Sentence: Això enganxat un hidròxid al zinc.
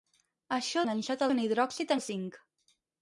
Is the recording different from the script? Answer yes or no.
no